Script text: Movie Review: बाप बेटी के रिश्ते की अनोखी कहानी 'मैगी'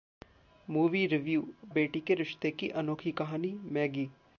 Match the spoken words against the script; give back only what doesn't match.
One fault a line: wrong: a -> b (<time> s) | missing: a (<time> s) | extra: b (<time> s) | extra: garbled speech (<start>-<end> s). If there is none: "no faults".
missing: बाप (1.4 s)